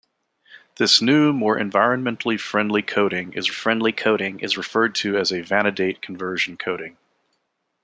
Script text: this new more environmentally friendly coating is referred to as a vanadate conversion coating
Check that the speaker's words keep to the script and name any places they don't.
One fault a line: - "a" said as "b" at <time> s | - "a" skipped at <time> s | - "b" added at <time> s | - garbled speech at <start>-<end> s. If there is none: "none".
- "friendly coating is" added at 3.5 s